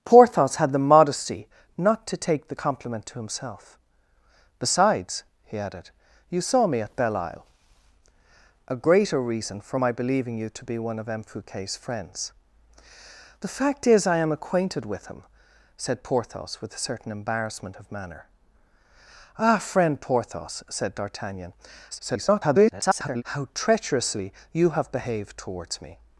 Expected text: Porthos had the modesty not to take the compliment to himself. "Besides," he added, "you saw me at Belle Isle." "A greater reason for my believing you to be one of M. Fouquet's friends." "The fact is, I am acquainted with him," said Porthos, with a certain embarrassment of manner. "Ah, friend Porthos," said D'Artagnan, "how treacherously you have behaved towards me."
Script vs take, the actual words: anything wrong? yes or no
yes